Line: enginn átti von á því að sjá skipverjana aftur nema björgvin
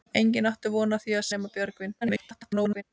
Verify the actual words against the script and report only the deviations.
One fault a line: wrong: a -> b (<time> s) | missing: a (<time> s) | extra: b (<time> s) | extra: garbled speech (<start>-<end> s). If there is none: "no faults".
missing: sjá skipverjana aftur (1.3 s)
extra: garbled speech (2.0-2.8 s)